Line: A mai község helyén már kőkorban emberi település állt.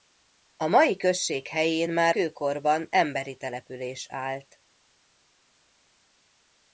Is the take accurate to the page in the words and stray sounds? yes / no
yes